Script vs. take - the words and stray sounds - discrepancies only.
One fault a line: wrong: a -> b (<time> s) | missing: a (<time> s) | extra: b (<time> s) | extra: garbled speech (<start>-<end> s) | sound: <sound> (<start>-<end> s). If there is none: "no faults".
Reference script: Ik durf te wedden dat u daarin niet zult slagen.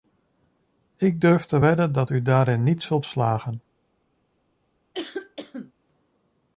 sound: cough (4.9-5.7 s)